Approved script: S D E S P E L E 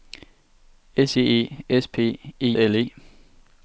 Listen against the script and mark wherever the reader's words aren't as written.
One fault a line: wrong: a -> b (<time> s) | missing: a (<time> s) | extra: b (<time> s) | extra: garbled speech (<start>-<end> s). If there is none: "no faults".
no faults